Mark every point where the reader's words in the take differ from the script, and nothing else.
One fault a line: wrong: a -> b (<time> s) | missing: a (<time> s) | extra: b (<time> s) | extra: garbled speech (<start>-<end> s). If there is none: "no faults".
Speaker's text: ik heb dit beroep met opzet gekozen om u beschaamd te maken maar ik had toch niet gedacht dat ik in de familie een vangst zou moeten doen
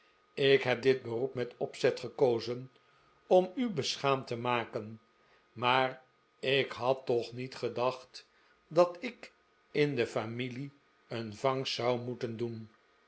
no faults